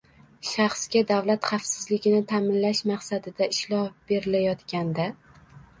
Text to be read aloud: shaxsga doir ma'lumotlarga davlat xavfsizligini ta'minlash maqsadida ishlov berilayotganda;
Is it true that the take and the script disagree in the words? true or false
true